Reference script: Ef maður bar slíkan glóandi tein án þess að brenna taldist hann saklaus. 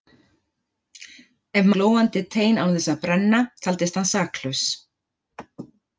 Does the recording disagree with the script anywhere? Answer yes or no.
yes